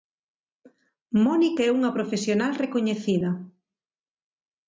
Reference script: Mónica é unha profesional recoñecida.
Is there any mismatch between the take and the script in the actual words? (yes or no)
no